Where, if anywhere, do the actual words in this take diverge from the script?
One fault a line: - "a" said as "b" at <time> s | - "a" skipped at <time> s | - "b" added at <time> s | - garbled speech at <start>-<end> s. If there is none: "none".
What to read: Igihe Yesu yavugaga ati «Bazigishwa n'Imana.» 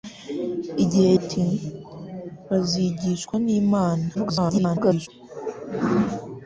- "Yesu yavugaga" skipped at 1.1 s
- garbled speech at 4.1-5.1 s